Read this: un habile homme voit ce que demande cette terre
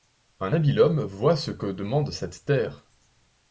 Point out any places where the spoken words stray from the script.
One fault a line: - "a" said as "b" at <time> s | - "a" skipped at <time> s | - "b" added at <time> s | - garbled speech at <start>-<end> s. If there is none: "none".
none